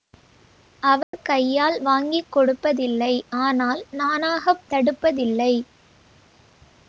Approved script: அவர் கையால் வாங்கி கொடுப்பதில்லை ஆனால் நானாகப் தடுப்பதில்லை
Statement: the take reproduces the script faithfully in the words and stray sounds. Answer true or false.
false